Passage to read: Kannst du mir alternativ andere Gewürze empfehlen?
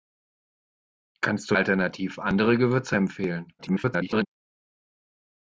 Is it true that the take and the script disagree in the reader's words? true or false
true